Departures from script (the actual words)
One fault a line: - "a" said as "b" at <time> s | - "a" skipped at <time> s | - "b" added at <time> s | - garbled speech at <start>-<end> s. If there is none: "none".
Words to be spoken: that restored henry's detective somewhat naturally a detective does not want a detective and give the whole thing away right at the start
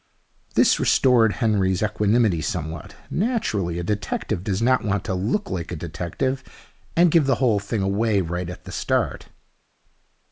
- "that" said as "this" at 0.6 s
- "detective" said as "equanimity" at 1.8 s
- "to look like" added at 5.0 s